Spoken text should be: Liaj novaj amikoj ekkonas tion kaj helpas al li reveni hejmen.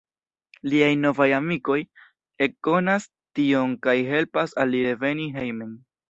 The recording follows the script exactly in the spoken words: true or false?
true